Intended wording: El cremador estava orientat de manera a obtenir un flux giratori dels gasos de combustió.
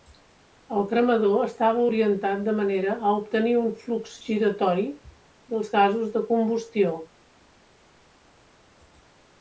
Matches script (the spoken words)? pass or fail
pass